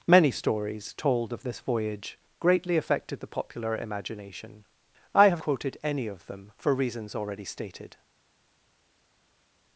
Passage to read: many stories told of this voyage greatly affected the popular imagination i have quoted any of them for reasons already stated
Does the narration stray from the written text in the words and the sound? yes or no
no